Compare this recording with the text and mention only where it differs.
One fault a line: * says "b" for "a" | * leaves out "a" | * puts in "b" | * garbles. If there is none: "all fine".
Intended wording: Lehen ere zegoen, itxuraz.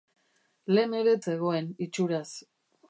all fine